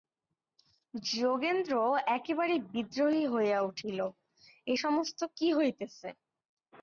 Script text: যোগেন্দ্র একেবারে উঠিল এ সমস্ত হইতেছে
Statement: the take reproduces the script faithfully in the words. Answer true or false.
false